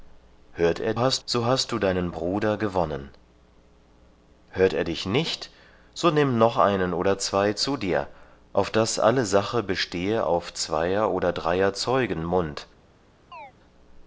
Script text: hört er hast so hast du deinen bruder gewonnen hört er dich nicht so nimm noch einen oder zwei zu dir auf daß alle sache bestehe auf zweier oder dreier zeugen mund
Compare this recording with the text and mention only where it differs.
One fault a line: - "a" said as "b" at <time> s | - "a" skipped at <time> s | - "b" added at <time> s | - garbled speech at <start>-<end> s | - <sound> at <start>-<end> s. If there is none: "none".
- chirp at 13.3-13.5 s